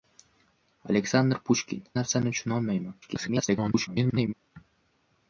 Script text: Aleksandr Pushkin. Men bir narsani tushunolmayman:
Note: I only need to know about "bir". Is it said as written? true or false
false